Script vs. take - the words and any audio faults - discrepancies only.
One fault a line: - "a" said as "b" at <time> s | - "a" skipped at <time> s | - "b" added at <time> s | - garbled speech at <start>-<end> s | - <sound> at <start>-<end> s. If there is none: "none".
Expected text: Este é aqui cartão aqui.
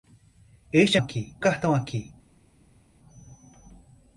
none